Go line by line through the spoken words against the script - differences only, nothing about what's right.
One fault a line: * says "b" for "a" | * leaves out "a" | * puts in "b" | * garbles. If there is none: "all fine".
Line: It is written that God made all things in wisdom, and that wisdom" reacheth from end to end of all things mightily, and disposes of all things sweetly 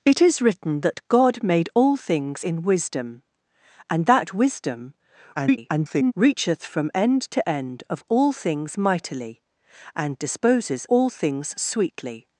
* garbles
* leaves out "of"